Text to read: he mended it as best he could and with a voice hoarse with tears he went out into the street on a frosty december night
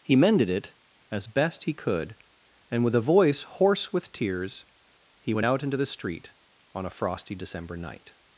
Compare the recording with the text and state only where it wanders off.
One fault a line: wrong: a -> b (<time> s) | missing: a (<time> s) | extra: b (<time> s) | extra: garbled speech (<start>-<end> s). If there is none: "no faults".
no faults